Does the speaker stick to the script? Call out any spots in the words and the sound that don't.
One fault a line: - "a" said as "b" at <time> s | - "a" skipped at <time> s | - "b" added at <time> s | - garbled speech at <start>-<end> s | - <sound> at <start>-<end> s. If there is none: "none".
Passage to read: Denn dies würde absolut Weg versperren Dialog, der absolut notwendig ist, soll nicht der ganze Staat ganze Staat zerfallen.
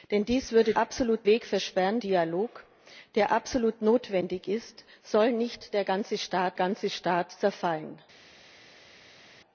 none